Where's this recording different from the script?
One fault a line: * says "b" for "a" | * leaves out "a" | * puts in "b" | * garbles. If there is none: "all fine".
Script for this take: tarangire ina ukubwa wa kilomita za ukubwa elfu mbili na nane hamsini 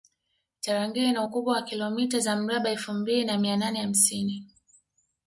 * says "mraba" for "ukubwa"
* puts in "mia"